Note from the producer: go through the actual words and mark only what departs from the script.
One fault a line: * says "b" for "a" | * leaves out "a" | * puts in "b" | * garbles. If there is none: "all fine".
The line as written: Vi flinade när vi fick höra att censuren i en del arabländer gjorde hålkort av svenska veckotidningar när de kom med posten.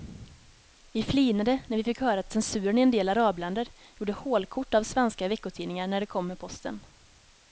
* puts in "att"